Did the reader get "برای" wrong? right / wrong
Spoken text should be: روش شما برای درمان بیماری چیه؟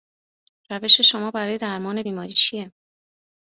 right